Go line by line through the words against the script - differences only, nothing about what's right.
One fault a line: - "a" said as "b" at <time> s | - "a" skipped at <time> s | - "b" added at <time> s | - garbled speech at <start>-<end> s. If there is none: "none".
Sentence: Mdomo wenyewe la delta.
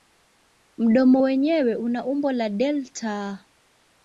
- "una umbo" added at 1.7 s